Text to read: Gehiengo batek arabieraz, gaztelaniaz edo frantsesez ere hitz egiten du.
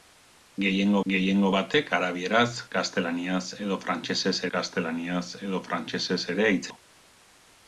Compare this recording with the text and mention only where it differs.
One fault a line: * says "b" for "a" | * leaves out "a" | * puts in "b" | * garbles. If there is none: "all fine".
* puts in "gehiengo"
* puts in "gaztelaniaz edo frantsesez"
* leaves out "egiten"